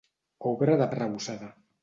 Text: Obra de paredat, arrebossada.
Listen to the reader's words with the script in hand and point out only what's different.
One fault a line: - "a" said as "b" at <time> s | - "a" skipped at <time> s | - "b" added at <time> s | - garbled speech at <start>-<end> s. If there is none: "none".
- "paredat" skipped at 0.9 s